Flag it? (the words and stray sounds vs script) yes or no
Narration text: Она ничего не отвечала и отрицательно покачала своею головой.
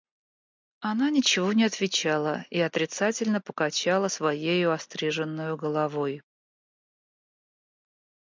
yes